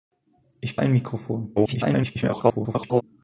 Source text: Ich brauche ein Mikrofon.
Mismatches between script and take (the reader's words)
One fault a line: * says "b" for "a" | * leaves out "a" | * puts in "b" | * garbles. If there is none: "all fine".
* leaves out "brauche"
* garbles